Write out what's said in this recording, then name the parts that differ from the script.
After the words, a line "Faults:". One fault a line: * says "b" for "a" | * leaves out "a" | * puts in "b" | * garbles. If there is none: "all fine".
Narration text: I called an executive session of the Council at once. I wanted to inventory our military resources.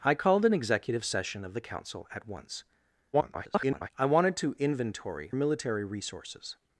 I called an executive session of the Council at once. [garbled] I wanted to inventory military resources.
Faults:
* garbles
* leaves out "our"